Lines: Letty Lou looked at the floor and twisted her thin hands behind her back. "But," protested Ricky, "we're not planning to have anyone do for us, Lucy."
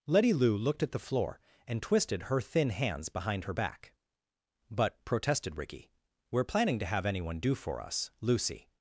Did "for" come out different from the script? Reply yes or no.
no